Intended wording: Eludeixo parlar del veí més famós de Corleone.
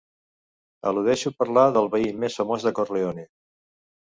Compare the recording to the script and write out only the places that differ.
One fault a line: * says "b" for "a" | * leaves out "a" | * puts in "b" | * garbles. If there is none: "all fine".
all fine